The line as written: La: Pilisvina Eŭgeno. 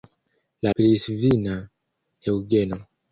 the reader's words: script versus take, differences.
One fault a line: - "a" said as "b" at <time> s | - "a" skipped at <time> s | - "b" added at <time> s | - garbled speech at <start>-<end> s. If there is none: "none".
none